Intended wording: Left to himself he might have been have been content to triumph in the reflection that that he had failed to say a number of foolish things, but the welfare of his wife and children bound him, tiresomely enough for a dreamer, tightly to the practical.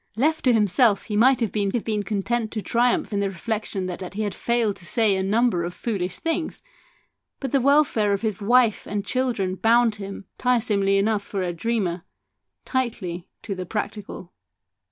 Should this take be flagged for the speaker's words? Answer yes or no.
no